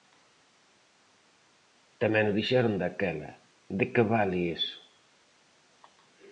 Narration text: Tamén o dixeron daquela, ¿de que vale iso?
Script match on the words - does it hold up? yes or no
yes